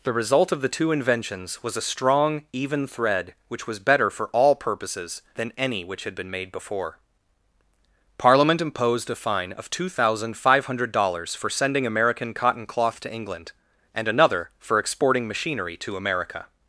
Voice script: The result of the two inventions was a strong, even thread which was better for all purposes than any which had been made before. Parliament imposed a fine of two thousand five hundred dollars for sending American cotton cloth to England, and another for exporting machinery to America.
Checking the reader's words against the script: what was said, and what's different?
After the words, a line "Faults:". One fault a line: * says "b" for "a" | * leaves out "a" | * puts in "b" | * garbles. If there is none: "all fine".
The result of the two inventions was a strong, even thread which was better for all purposes than any which had been made before. Parliament imposed a fine of two thousand five hundred dollars for sending American cotton cloth to England, and another for exporting machinery to America.
Faults:
all fine